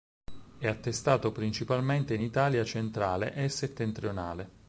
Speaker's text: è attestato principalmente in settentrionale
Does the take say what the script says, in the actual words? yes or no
no